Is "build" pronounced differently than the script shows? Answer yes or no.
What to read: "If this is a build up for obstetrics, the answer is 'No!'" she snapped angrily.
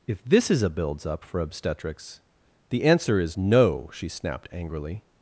yes